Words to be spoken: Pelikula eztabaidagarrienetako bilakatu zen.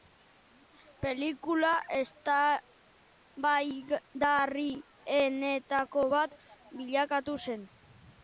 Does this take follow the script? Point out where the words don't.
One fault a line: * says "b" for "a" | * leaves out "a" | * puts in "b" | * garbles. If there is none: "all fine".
* puts in "bat"